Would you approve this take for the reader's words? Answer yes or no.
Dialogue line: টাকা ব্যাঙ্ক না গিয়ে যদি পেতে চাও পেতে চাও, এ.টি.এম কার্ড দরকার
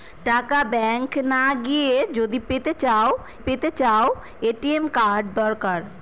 yes